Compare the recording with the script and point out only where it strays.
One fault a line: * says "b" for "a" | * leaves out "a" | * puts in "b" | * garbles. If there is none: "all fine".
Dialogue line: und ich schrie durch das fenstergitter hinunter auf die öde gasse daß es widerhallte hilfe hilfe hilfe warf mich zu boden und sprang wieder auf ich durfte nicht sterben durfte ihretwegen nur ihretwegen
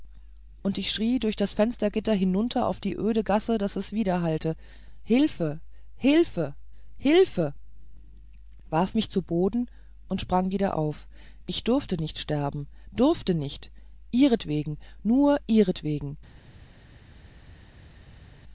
* puts in "nicht"